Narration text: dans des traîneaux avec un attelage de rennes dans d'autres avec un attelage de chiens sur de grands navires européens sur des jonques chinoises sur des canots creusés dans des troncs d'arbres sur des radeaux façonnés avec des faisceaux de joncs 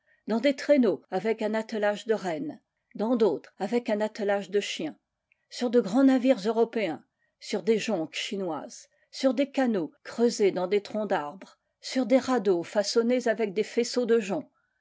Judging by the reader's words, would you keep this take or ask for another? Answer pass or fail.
pass